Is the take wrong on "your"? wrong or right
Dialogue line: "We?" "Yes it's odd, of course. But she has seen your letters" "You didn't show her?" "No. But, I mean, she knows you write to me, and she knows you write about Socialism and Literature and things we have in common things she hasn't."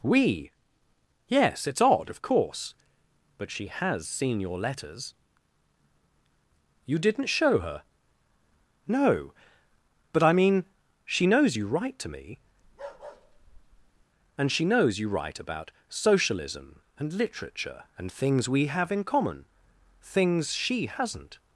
right